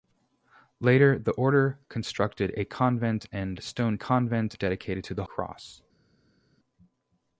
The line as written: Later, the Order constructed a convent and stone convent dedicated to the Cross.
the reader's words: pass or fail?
pass